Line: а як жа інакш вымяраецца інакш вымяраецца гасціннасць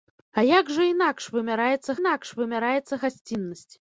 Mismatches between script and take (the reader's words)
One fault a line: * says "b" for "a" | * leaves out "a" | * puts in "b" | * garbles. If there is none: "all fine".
all fine